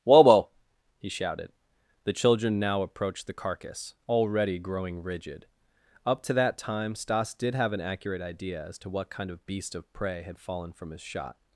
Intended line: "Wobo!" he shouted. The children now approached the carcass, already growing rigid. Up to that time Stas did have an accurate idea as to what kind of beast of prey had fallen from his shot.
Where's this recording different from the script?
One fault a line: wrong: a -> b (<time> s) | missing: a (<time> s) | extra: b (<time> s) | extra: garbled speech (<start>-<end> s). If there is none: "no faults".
no faults